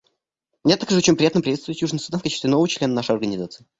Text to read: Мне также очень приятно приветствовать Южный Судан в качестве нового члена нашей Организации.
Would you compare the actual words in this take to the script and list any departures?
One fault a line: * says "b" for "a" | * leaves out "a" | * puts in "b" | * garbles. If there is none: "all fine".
all fine